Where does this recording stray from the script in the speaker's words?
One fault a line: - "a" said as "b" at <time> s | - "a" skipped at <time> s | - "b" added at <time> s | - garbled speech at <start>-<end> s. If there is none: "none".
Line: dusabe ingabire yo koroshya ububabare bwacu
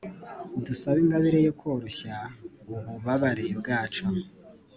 none